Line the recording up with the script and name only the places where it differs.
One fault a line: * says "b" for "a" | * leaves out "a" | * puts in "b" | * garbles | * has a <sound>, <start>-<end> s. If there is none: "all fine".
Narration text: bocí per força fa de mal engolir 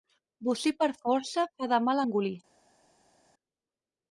all fine